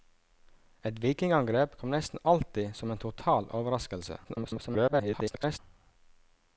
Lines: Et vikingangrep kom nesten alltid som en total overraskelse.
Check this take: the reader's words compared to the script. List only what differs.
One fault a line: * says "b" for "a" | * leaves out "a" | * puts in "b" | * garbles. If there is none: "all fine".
* garbles